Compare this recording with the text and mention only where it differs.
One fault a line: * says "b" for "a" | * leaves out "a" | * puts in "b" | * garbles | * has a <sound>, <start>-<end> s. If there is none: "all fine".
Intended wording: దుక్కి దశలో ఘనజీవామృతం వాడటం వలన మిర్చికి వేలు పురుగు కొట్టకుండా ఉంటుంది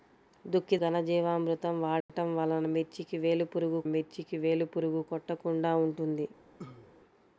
* leaves out "దశలో"
* has a dropout, 2.0-2.1 s
* puts in "మిర్చికి వేలు పురుగు"
* has a cough, 6.6-6.9 s